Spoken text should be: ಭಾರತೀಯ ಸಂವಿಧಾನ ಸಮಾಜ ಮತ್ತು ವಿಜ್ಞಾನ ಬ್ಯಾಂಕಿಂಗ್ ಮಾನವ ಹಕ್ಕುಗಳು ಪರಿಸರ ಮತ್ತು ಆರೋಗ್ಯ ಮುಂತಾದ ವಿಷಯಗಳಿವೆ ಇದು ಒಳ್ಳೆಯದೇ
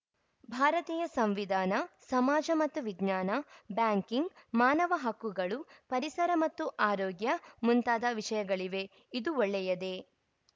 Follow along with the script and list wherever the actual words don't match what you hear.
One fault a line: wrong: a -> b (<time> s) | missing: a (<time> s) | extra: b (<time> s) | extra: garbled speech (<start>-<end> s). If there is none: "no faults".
no faults